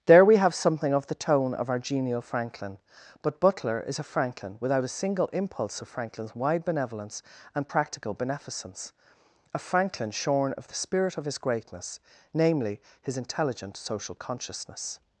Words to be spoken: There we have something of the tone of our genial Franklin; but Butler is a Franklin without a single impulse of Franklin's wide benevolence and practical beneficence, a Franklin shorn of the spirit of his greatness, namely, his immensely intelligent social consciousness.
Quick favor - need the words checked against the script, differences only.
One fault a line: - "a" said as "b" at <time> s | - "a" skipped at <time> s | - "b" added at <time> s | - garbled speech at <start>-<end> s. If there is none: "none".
- "immensely" skipped at 13.2 s